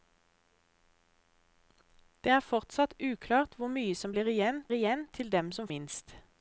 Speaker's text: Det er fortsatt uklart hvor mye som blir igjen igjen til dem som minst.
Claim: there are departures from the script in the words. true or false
false